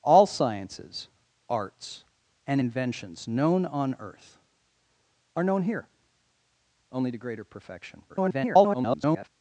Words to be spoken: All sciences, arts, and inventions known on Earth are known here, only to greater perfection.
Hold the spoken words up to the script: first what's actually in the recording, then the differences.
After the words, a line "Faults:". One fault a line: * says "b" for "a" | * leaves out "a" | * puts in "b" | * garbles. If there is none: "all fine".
All sciences, arts, and inventions known on Earth are known here, only to greater perfection. [garbled]
Faults:
* garbles